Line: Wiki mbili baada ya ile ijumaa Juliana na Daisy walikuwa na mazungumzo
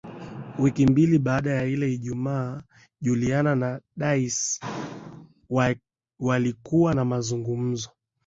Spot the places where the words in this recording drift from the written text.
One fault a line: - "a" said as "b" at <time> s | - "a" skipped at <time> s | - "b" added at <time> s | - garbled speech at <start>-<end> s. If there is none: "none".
none